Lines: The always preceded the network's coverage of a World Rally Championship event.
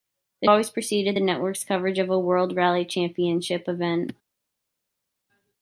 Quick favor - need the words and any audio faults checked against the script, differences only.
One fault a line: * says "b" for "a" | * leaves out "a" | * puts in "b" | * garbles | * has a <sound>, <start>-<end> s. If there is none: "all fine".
all fine